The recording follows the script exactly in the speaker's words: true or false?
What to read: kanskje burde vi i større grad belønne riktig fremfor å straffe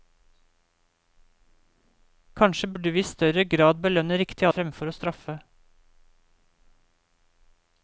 true